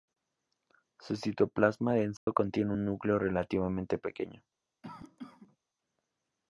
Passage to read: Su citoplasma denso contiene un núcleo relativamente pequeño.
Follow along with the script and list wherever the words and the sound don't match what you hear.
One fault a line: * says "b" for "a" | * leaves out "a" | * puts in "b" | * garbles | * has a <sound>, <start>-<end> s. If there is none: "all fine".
* has a dropout, 2.2-2.3 s
* has a cough, 4.8-5.6 s